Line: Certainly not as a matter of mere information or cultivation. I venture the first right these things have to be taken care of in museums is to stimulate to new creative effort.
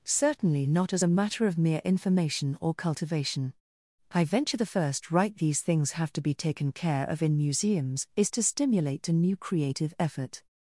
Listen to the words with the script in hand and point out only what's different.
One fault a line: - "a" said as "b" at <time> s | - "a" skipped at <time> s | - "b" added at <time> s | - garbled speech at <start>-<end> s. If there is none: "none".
none